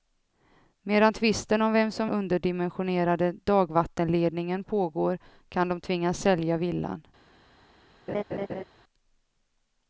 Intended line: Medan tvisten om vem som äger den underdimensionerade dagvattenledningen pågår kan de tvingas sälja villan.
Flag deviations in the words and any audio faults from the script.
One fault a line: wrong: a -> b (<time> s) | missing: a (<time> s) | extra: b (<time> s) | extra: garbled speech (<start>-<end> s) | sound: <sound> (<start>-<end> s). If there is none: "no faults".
missing: äger den (2.1 s)
sound: laugh (8.1-8.6 s)